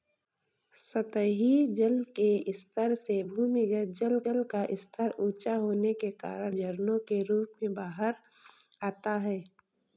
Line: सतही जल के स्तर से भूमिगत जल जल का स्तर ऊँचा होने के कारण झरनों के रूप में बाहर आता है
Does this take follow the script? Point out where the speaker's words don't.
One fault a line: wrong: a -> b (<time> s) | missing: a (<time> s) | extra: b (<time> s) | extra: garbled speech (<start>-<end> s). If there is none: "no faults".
no faults